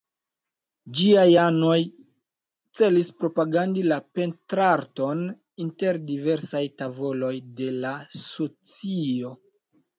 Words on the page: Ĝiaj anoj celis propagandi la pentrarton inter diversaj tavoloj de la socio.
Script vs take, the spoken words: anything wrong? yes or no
no